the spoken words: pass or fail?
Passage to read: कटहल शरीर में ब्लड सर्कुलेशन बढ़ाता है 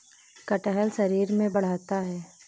fail